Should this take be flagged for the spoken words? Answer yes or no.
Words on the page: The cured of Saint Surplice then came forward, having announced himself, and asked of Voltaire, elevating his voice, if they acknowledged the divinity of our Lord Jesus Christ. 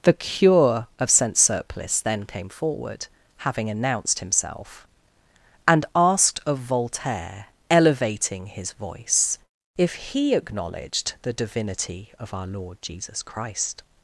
yes